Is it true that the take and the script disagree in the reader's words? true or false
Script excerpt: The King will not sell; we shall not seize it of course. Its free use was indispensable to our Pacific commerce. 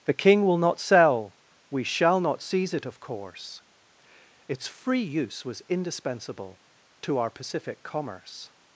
false